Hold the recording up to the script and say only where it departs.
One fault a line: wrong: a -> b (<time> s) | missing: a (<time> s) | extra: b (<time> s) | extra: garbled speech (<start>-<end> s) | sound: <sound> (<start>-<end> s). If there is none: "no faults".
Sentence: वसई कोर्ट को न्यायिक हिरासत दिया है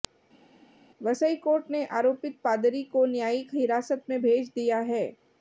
extra: ने आरोपित पादरी (1.7 s)
extra: में भेज (4.1 s)